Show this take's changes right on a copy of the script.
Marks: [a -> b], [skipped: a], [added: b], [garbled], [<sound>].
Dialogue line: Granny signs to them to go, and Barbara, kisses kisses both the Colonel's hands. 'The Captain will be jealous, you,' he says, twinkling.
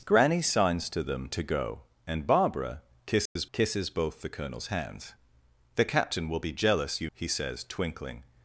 Granny signs to them to go, and Barbara, kisses [dropout] kisses both the Colonel's hands. 'The Captain will be jealous, you,' he says, twinkling.